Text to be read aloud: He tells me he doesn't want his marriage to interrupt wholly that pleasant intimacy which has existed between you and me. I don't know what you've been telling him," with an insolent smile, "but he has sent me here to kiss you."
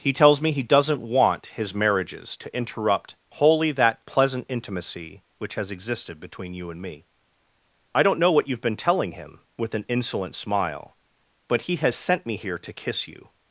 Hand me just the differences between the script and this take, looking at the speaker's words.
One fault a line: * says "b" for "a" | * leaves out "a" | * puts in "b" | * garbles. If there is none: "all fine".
* says "marriages" for "marriage"